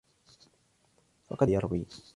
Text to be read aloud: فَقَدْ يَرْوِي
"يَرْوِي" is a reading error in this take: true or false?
false